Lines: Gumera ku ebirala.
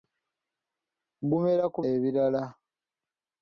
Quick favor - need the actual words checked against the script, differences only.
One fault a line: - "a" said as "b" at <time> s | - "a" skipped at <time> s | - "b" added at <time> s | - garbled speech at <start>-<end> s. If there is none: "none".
none